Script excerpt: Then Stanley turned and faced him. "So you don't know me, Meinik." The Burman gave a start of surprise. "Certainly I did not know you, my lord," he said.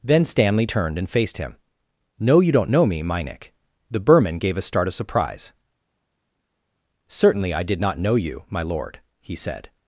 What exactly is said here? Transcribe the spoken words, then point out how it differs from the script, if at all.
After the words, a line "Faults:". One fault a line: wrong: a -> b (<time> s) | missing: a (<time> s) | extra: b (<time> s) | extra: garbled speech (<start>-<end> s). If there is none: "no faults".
Then Stanley turned and faced him. "No you don't know me, Meinik." The Burman gave a start of surprise. "Certainly I did not know you, my lord," he said.
Faults:
wrong: So -> No (2.2 s)